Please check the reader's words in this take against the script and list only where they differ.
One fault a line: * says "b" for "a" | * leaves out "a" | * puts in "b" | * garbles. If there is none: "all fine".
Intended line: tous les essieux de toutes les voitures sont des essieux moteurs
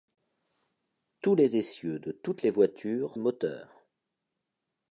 * leaves out "sont des essieux"